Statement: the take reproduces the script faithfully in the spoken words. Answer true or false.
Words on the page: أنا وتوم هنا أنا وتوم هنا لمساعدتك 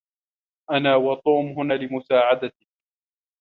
false